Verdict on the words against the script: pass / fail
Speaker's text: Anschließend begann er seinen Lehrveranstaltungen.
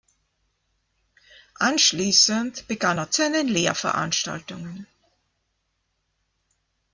pass